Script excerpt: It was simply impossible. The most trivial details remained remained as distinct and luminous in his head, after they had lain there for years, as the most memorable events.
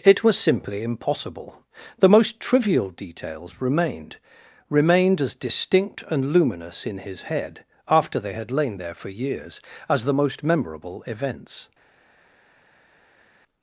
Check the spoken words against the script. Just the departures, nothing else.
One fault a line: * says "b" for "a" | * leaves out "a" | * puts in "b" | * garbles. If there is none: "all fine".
all fine